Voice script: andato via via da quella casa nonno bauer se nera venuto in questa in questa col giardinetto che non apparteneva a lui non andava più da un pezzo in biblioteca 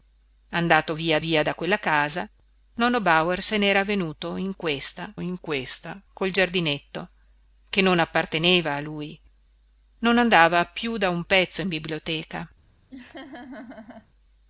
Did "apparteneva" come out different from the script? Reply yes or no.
no